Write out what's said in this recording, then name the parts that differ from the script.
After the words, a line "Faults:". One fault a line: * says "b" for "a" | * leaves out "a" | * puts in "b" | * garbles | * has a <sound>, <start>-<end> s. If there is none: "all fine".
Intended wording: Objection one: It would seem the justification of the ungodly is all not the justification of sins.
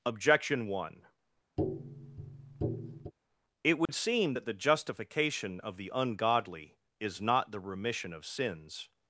Objection one: It would seem that the justification of the ungodly is not the remission of sins.
Faults:
* has a tap, 1.6-3.1 s
* has a dropout, 3.9-3.9 s
* puts in "that"
* leaves out "all"
* says "remission" for "justification"